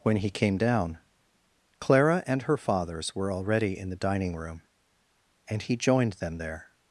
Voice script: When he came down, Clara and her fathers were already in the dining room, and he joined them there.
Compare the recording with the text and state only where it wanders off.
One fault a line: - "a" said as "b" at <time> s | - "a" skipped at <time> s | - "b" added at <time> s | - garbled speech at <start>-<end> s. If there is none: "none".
none